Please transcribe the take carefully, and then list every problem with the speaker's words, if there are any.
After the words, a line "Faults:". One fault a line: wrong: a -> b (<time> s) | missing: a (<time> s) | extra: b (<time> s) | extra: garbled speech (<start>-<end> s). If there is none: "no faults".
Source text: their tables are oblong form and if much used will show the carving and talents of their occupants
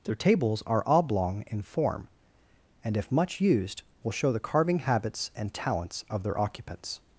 their tables are oblong in form and if much used will show the carving habits and talents of their occupants
Faults:
extra: in (1.5 s)
extra: habits (4.8 s)